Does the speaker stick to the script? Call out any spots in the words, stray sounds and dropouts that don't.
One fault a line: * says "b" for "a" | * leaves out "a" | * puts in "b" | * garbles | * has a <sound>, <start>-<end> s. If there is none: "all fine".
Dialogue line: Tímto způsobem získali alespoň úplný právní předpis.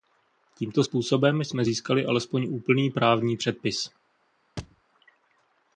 * puts in "jsme"
* has a thud, 4.6-4.8 s